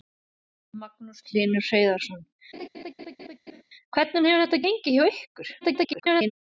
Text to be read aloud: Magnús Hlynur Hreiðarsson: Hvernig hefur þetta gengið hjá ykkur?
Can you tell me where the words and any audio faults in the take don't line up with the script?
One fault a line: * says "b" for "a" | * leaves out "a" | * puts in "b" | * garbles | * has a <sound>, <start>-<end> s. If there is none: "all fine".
* has a laugh, 2.5-3.6 s
* garbles